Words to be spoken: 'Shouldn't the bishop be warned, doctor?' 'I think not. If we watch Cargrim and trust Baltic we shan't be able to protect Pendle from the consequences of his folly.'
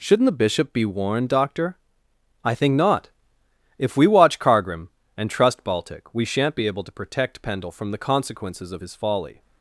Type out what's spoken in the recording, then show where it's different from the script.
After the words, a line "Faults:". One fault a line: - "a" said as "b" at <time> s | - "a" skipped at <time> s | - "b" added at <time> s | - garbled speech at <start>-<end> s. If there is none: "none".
'Shouldn't the bishop be warned, doctor?' 'I think not. If we watch Cargrim and trust Baltic we shan't be able to protect Pendle from the consequences of his folly.'
Faults:
none